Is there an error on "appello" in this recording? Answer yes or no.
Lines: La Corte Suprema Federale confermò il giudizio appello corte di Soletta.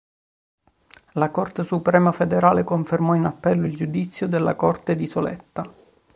yes